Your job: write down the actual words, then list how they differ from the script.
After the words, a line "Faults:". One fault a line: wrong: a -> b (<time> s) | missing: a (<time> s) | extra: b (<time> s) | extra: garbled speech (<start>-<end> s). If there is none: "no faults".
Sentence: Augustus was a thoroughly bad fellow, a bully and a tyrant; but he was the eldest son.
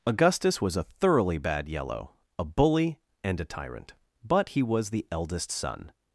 Augustus was a thoroughly bad yellow, a bully and a tyrant; but he was the eldest son.
Faults:
wrong: fellow -> yellow (1.7 s)